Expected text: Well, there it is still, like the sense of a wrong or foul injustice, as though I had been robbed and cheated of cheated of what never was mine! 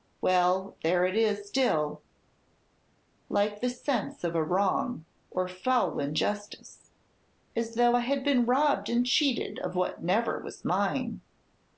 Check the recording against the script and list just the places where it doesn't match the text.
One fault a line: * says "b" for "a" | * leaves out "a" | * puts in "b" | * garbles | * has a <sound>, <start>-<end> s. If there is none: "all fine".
* leaves out "cheated of"